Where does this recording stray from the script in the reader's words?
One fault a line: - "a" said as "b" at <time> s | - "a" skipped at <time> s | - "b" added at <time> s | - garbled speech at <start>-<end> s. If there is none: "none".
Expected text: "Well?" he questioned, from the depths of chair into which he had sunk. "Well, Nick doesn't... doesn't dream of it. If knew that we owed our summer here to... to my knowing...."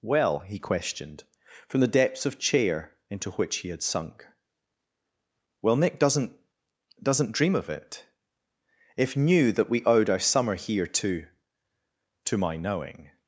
none